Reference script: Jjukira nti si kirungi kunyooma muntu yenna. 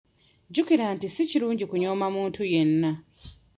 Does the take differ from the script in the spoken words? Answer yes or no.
no